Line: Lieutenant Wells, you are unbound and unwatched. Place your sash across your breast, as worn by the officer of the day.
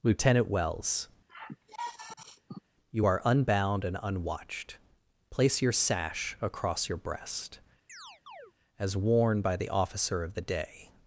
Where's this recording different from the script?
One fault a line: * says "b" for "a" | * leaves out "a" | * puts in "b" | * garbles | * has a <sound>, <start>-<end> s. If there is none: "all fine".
* has a sigh, 1.3-2.6 s
* has a chirp, 7.9-8.5 s